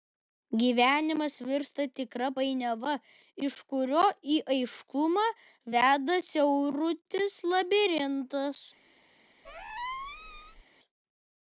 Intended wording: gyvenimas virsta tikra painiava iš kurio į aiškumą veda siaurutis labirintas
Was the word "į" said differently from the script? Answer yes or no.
no